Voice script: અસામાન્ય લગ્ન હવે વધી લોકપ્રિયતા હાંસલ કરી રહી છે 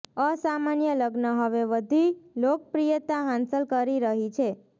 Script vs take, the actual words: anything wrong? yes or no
no